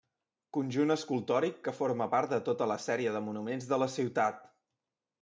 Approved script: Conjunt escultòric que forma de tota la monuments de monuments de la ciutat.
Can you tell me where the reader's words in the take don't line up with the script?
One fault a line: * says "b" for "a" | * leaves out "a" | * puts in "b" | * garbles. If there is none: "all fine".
* puts in "part"
* says "sèrie" for "monuments"